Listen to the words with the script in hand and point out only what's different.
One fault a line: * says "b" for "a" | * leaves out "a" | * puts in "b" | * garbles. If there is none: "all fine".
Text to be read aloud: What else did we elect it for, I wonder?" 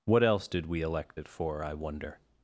all fine